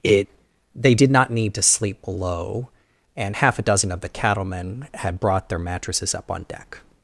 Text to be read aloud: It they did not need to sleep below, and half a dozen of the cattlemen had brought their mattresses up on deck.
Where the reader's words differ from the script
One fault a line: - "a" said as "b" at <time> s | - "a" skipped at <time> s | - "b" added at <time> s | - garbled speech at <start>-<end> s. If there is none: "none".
none